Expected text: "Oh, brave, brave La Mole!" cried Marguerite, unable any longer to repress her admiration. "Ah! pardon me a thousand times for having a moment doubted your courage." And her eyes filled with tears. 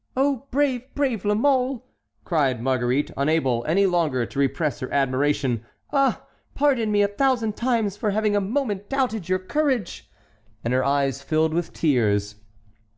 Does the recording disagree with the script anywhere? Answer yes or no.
no